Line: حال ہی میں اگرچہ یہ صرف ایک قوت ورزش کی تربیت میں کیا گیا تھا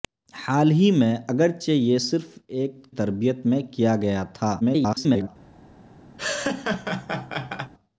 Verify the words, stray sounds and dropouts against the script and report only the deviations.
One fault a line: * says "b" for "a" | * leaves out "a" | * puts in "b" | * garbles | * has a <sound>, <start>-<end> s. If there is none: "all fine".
* leaves out "قوت ورزش کی"
* garbles
* has a laugh, 6.2-7.7 s